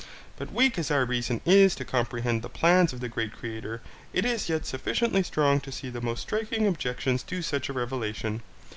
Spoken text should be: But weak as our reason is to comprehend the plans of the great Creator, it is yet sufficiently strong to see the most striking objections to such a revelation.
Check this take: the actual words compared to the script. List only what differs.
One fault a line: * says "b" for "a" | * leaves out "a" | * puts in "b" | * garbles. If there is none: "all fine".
all fine